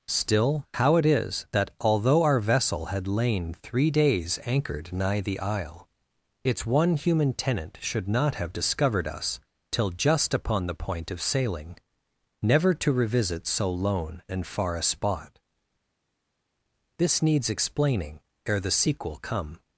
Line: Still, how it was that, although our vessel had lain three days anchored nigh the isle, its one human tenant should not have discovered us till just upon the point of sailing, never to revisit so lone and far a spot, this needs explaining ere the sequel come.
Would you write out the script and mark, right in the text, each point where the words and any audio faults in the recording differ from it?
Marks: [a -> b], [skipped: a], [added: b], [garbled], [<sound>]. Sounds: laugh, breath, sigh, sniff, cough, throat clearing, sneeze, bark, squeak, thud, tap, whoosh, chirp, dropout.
Still, how it [was -> is] that, although our vessel had lain three days anchored nigh the isle, its one human tenant should not have discovered us till just upon the point of sailing, never to revisit so lone and far a spot, this needs explaining ere the sequel come.